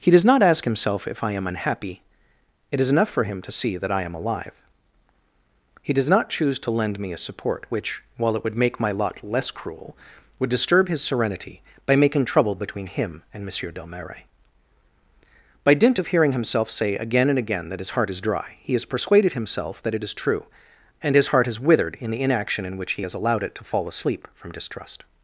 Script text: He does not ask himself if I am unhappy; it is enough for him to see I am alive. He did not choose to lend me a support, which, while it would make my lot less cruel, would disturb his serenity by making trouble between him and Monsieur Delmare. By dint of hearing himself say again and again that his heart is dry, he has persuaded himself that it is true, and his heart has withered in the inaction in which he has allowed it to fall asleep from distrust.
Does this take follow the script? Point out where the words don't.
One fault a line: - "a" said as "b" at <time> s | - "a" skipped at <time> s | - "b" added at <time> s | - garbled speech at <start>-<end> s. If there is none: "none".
- "that" added at 3.8 s
- "did" said as "does" at 5.9 s